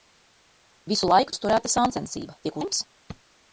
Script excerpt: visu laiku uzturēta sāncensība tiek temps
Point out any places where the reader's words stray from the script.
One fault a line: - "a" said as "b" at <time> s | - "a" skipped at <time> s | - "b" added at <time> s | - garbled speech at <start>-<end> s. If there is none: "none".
none